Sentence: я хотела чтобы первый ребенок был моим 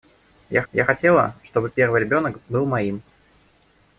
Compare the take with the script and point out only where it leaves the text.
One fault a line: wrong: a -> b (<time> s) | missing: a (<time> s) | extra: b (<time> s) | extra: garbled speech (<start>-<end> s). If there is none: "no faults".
extra: я (0.7 s)